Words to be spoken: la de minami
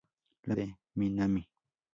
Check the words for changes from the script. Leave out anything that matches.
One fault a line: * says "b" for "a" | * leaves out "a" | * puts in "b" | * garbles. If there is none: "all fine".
all fine